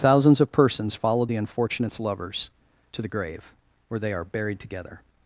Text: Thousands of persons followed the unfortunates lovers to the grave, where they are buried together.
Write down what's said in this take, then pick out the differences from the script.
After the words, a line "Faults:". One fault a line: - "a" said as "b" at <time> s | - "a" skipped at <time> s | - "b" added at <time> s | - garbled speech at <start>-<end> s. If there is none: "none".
Thousands of persons followed the unfortunates lovers to the grave, where they are buried together.
Faults:
none